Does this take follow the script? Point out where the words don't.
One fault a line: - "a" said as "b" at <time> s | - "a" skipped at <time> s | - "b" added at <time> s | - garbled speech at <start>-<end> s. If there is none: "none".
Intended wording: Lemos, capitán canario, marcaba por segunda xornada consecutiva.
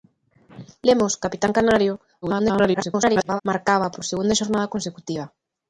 - garbled speech at 2.2-3.4 s